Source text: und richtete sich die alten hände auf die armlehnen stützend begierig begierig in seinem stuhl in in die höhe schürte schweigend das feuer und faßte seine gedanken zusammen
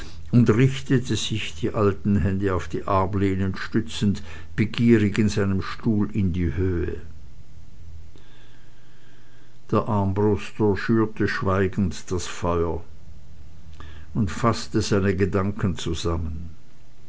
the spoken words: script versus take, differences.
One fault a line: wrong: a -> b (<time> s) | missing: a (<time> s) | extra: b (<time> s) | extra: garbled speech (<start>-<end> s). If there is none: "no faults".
missing: begierig (5.2 s)
missing: in (6.3 s)
extra: der armbruster (9.7 s)